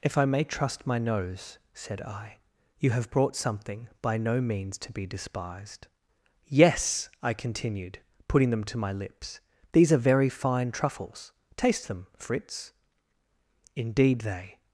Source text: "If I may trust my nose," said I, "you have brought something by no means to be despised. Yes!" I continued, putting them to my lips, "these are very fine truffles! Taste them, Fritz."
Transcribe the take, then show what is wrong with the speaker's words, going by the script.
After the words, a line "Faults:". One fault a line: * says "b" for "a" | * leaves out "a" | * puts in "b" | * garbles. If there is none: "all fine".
"If I may trust my nose," said I, "you have brought something by no means to be despised. Yes!" I continued, putting them to my lips, "these are very fine truffles! Taste them, Fritz." "Indeed, they
Faults:
* puts in "Indeed they"